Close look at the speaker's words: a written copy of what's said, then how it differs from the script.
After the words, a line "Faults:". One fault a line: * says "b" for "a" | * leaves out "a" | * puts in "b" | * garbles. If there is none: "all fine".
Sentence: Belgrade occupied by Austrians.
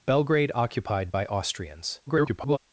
Belgrade occupied by Austrians. [garbled]
Faults:
* garbles